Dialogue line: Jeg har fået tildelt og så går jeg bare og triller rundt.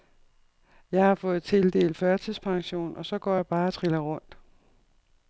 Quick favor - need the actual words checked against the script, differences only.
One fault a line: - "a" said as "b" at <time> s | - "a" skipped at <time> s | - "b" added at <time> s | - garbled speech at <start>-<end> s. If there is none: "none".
- "førtidspension" added at 1.9 s